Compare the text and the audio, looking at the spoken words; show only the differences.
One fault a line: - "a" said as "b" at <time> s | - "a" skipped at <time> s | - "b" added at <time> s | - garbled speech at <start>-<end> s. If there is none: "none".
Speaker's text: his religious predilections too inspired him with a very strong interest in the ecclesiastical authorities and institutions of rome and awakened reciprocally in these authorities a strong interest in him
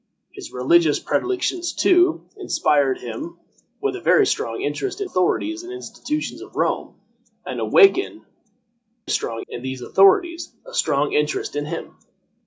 - "the ecclesiastical" skipped at 5.1 s
- "reciprocally" said as "strong" at 9.1 s